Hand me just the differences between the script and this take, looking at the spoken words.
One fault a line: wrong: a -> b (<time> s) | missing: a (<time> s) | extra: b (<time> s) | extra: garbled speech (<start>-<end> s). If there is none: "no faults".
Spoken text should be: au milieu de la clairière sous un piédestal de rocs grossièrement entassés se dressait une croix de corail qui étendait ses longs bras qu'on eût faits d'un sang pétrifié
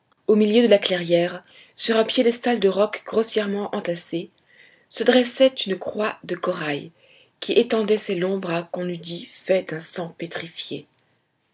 wrong: sous -> sur (1.8 s)
extra: dit (9.0 s)